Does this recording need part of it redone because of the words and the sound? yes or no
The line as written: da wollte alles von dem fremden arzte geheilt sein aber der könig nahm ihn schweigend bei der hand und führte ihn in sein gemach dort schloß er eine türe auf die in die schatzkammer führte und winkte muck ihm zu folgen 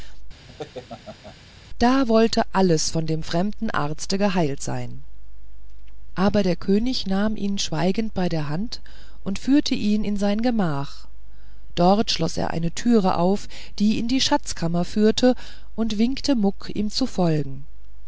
yes